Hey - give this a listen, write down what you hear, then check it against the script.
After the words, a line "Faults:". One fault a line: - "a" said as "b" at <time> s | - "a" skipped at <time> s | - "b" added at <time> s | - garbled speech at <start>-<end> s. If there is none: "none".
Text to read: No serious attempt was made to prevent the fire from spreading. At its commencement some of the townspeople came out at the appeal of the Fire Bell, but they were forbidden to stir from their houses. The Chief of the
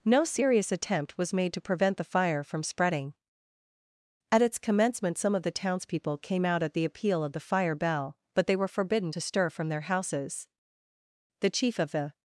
No serious attempt was made to prevent the fire from spreading. At its commencement some of the townspeople came out at the appeal of the Fire Bell, but they were forbidden to stir from their houses. The Chief of the
Faults:
none